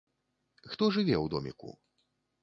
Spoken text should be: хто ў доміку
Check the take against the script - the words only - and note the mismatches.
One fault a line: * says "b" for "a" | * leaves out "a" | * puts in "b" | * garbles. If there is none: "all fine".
* puts in "жыве"